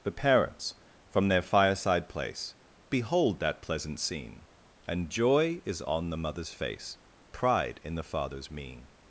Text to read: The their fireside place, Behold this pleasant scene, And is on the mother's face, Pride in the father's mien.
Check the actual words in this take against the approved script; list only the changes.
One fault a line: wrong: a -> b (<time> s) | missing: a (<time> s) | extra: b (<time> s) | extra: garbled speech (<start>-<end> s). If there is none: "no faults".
extra: parents from (0.1 s)
wrong: this -> that (3.4 s)
extra: joy (5.1 s)